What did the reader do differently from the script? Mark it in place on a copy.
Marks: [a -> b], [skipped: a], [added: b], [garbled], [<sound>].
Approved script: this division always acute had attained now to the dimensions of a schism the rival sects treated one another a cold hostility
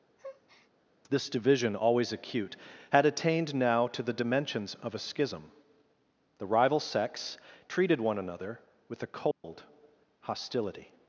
[breath] this division always acute had attained now to the dimensions of a schism the rival sects treated one another [added: with] a cold [dropout] hostility